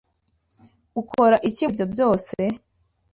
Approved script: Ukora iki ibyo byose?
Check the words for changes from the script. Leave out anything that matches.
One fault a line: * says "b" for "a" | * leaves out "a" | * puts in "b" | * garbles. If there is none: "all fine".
all fine